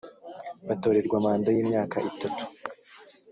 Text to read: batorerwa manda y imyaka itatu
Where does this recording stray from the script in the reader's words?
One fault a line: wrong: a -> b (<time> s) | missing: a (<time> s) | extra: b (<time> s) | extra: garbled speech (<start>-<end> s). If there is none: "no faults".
no faults